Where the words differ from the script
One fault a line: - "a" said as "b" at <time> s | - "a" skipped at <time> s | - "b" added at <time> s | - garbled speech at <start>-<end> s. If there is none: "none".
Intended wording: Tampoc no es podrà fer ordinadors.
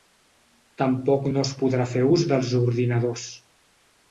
- "ús dels" added at 2.2 s